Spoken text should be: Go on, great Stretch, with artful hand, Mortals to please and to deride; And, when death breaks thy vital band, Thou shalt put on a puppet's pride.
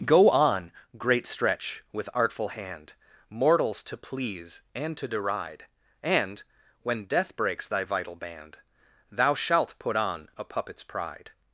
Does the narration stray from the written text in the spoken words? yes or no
no